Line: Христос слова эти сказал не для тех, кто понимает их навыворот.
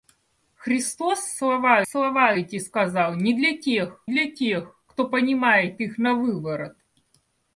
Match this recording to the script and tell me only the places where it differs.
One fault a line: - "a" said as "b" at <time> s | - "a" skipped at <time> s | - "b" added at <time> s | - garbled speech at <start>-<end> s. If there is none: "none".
- "слова" added at 1.9 s
- "для тех" added at 4.1 s